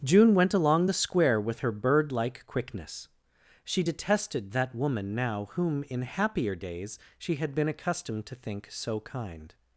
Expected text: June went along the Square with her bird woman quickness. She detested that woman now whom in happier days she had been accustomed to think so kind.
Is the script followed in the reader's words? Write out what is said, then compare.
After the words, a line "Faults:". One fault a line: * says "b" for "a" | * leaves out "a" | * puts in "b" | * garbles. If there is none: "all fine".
June went along the Square with her bird like quickness. She detested that woman now whom in happier days she had been accustomed to think so kind.
Faults:
* says "like" for "woman"